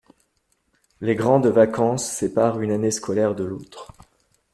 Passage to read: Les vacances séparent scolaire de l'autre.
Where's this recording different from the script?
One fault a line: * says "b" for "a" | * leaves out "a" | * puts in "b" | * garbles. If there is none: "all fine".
* puts in "grandes"
* puts in "une année"